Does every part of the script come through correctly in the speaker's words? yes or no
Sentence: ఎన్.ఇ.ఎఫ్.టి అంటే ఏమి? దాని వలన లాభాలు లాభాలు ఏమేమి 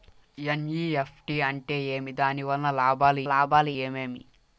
yes